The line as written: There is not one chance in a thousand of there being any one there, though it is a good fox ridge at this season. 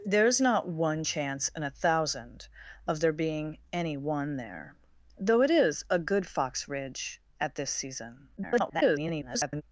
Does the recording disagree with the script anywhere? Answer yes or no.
yes